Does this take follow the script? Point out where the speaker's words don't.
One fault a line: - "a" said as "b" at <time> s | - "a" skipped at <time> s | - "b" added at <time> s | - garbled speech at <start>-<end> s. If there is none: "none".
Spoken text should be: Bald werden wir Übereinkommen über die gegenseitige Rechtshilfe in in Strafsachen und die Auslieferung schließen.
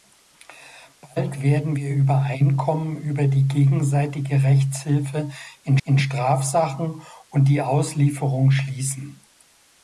none